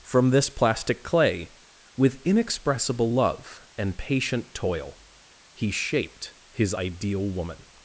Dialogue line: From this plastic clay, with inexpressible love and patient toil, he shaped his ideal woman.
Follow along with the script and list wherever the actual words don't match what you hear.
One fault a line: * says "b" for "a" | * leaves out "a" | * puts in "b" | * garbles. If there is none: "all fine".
all fine